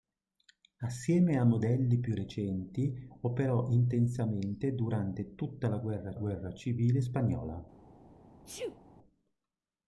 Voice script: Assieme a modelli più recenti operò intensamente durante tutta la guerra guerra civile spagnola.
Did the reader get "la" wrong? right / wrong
right